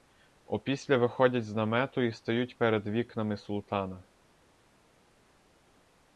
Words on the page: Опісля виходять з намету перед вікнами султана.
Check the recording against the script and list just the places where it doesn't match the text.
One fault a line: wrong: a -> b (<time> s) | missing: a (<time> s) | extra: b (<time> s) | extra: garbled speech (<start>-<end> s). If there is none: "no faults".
extra: і стають (2.0 s)